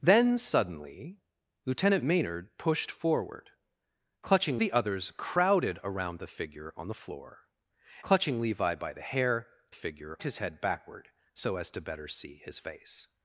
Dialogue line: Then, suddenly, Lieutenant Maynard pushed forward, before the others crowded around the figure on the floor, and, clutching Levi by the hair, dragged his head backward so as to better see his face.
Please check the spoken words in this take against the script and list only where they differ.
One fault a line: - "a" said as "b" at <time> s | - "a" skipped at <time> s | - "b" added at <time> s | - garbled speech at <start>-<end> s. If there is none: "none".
- "before" said as "clutching" at 4.2 s
- "and" skipped at 7.5 s
- "dragged" said as "figure" at 9.7 s